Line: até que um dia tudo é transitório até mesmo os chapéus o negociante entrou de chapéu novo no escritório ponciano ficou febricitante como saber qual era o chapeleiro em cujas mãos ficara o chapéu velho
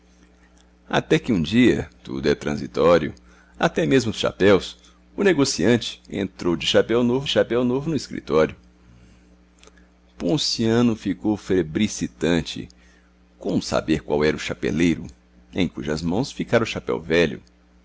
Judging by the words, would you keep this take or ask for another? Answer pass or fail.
fail